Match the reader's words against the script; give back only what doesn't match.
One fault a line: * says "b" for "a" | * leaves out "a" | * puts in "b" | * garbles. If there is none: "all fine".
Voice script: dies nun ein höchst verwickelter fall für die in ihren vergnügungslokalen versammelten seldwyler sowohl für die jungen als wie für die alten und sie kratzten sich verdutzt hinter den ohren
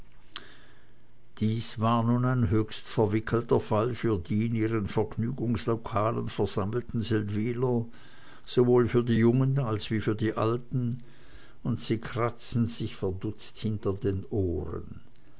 * puts in "war"